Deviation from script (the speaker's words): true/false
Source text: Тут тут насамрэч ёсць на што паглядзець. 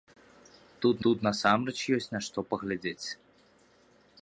false